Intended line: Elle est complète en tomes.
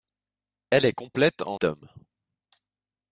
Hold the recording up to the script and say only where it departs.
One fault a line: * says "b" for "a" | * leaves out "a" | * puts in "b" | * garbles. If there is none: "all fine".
all fine